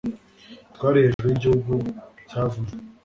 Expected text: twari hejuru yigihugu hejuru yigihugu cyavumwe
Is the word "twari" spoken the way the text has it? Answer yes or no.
yes